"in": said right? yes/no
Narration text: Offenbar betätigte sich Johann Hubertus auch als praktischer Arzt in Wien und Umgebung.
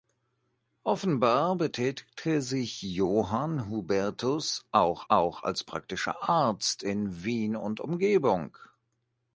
yes